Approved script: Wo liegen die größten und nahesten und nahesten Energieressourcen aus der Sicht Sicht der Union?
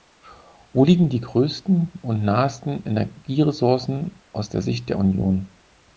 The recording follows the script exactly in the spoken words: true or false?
false